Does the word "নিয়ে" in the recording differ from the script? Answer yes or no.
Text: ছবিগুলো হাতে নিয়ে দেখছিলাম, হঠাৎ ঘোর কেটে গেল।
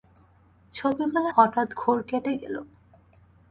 yes